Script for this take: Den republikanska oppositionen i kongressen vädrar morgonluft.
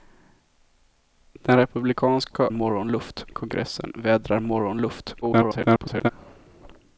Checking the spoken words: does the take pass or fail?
fail